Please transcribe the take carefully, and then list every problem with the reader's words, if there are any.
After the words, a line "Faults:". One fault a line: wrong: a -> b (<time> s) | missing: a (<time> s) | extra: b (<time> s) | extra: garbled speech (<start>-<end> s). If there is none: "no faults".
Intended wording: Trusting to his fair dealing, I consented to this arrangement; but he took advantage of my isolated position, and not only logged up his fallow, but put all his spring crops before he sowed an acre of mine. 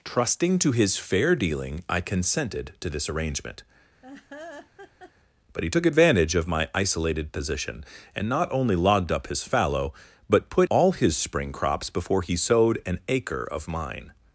Trusting to his fair dealing, I consented to this arrangement; but he took advantage of my isolated position, and not only logged up his fallow, but put all his spring crops before he sowed an acre of mine.
Faults:
no faults